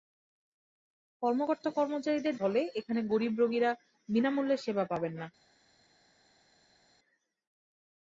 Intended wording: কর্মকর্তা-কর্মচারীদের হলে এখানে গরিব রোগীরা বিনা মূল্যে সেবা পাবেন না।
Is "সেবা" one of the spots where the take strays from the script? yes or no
no